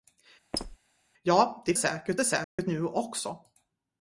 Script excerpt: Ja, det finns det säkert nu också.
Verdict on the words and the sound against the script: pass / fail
fail